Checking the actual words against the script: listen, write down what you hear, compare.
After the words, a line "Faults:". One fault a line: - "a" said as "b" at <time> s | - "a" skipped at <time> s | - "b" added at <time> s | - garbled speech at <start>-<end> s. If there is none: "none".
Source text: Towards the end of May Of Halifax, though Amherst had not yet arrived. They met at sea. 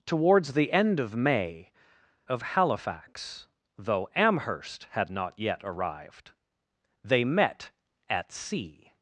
Towards the end of May Of Halifax, though Amherst had not yet arrived. They met at sea.
Faults:
none